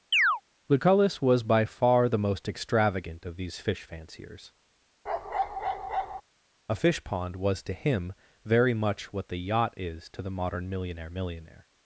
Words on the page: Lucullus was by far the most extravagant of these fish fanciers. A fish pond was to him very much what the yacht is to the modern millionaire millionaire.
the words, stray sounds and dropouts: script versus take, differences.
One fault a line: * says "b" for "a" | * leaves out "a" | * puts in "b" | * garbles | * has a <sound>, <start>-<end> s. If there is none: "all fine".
* has a chirp, 0.1-0.4 s
* has a bark, 5.1-6.2 s